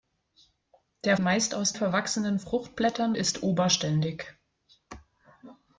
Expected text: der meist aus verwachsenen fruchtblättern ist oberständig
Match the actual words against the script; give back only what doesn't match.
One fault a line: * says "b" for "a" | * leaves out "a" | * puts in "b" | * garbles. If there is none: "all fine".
all fine